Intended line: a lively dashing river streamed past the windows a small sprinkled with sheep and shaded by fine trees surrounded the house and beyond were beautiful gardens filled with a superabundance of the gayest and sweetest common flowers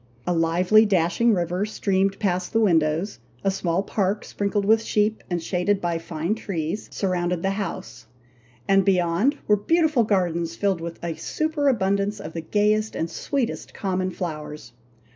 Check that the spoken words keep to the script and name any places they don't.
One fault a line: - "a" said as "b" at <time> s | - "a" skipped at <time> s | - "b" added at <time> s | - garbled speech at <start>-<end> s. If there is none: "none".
- "park" added at 3.8 s